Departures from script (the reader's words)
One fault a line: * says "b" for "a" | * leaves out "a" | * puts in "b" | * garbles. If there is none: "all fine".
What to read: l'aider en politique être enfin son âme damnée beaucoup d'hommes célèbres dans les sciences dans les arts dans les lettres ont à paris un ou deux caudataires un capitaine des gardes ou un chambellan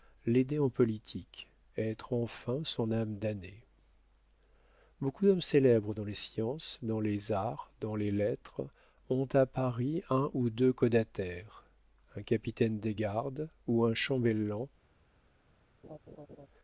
all fine